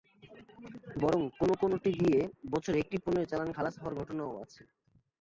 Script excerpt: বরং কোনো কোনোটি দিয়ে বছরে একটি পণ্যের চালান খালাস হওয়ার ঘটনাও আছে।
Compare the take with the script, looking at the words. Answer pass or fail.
pass